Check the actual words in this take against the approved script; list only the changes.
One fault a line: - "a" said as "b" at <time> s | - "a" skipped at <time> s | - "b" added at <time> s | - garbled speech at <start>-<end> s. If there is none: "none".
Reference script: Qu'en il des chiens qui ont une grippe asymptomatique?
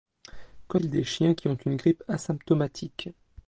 none